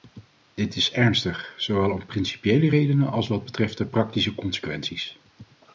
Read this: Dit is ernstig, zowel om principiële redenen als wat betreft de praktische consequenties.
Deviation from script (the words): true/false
false